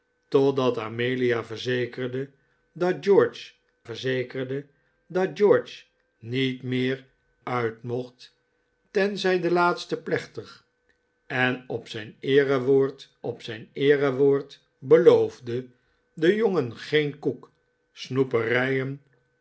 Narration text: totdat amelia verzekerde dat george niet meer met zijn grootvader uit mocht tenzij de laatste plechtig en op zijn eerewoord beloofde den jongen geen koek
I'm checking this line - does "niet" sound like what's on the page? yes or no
no